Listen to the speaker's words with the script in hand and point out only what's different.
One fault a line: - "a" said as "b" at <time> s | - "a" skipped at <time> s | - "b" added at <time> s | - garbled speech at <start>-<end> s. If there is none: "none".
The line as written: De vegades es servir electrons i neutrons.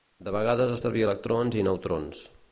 none